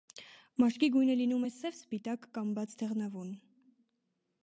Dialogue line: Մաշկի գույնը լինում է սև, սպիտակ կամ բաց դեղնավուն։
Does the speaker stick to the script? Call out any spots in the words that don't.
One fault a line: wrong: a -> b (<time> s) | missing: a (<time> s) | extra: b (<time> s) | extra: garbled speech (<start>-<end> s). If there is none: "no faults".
no faults